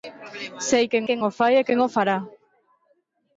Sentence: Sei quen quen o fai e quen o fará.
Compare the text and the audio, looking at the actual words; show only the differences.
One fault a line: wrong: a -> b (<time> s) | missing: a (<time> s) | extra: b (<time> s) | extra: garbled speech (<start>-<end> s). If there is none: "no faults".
no faults